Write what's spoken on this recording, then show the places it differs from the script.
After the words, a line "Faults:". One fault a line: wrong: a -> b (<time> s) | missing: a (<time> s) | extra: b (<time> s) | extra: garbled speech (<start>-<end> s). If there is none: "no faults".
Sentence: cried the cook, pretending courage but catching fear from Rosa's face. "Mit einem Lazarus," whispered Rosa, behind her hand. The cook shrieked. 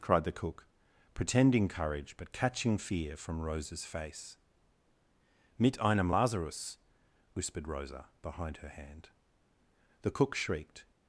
cried the cook, pretending courage but catching fear from Rosa's face. "Mit einem Lazarus," whispered Rosa, behind her hand. The cook shrieked.
Faults:
no faults